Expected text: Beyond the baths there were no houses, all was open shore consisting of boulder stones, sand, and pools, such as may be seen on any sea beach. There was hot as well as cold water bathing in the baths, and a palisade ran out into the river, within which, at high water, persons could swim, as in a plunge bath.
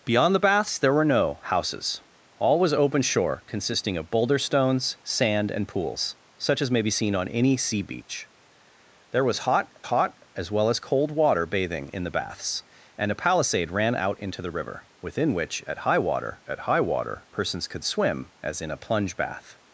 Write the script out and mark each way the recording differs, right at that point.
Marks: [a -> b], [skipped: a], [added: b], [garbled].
Beyond the baths there were no houses, all was open shore consisting of boulder stones, sand, and pools, such as may be seen on any sea beach. There was hot [added: hot] as well as cold water bathing in the baths, and a palisade ran out into the river, within which, at high water, [added: at high water] persons could swim, as in a plunge bath.